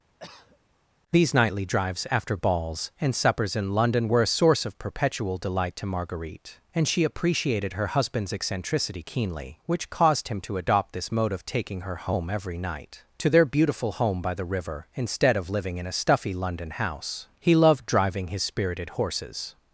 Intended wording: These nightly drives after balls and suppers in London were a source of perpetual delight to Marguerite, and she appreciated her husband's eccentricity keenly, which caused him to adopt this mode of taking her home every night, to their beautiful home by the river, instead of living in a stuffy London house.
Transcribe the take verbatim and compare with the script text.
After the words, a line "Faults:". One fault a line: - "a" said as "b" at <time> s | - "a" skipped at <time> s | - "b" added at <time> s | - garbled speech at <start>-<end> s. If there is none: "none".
These nightly drives after balls and suppers in London were a source of perpetual delight to Marguerite, and she appreciated her husband's eccentricity keenly, which caused him to adopt this mode of taking her home every night, to their beautiful home by the river, instead of living in a stuffy London house. He loved driving his spirited horses
Faults:
- "He loved driving his spirited horses" added at 17.4 s